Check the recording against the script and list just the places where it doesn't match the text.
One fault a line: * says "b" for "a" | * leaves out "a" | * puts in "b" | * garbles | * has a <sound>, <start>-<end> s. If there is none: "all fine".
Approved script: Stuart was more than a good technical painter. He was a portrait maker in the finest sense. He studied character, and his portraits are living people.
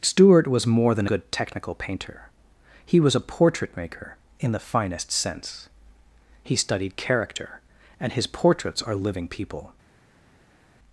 * leaves out "a"